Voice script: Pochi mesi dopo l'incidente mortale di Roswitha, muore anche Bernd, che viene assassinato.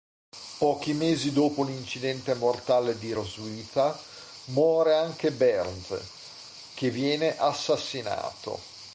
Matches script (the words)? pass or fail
pass